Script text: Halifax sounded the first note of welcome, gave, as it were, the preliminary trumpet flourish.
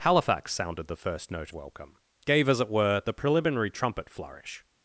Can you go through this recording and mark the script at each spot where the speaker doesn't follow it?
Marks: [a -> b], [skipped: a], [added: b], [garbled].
Halifax sounded the first note [skipped: of] welcome, gave, as it were, the preliminary trumpet flourish.